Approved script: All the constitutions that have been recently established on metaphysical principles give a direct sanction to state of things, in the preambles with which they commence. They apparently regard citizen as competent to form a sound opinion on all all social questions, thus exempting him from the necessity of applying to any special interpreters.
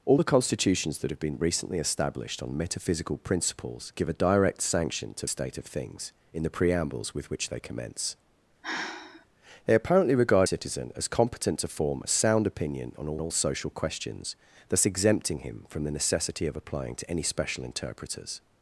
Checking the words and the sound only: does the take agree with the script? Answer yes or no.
no